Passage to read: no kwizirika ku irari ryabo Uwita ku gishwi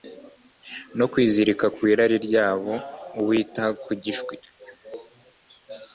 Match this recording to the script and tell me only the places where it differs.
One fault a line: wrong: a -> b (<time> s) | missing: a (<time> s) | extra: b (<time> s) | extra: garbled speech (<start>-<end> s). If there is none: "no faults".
no faults